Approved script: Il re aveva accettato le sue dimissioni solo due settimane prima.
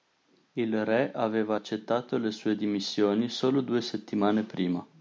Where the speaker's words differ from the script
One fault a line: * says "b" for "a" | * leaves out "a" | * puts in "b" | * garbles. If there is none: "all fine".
all fine